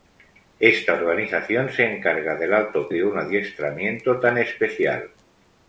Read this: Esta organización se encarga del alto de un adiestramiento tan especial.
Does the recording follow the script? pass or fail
pass